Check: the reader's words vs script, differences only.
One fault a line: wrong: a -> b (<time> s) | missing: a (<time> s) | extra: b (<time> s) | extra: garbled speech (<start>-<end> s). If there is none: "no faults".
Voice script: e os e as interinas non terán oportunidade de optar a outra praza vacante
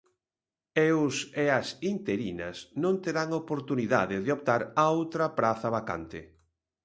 no faults